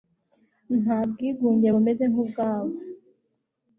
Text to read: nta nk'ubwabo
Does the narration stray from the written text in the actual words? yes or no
yes